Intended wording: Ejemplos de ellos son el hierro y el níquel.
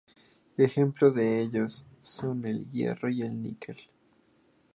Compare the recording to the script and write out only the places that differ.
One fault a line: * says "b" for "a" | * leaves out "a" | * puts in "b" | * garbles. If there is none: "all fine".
all fine